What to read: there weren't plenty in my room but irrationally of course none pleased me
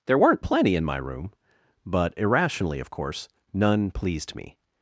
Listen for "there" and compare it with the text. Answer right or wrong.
right